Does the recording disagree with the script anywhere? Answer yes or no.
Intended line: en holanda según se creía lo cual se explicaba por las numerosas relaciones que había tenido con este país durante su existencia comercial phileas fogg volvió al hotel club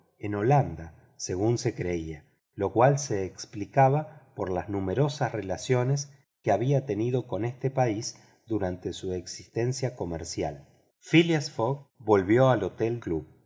no